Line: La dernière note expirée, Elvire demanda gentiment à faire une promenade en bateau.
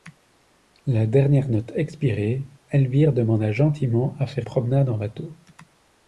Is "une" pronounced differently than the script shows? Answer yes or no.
yes